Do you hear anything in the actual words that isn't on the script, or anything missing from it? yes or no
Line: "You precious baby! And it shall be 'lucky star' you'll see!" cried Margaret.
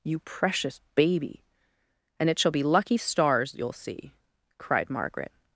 yes